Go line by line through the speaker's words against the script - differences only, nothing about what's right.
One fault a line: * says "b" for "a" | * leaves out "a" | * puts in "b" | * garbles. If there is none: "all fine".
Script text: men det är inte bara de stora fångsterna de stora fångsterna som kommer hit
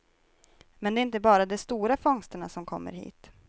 * leaves out "de stora fångsterna"